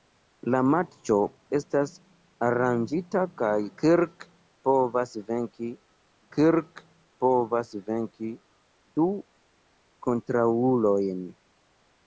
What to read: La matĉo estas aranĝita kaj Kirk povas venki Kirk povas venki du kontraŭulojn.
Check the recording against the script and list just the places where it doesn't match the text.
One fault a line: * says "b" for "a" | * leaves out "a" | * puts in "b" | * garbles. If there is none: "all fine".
all fine